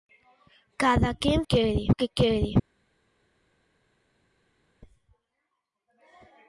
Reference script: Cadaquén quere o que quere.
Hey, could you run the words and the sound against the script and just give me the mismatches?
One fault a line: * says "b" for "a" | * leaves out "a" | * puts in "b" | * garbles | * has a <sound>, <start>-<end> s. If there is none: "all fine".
all fine